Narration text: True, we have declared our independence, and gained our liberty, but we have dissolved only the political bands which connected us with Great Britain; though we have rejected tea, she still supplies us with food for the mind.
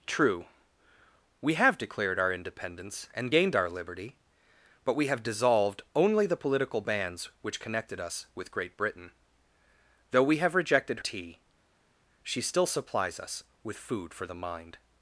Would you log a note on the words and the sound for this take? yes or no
no